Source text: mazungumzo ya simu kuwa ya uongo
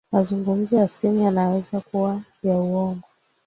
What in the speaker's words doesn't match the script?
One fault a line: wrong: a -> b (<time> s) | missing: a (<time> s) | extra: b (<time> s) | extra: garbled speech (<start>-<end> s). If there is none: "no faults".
extra: yanaweza (1.2 s)